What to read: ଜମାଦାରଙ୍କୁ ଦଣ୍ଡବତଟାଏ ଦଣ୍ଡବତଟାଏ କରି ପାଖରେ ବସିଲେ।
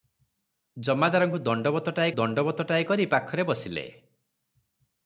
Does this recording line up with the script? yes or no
yes